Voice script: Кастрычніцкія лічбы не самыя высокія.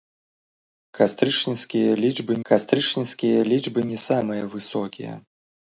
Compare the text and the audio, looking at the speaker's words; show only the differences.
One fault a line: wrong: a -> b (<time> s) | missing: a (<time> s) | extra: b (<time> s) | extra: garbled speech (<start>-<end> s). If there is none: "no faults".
extra: кастрычніцкія лічбы (2.5 s)